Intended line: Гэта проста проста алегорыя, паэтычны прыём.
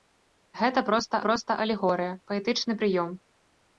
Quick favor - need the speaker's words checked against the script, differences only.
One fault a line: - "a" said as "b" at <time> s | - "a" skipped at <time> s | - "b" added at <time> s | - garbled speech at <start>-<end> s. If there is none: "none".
none